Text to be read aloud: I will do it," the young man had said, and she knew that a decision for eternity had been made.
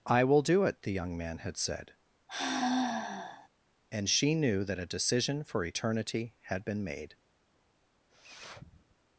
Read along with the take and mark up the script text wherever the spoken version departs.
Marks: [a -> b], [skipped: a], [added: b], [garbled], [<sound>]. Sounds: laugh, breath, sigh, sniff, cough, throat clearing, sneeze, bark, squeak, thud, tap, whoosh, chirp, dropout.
I will do it," the young man had said, [sigh] and she knew that a decision for eternity had been made. [sniff]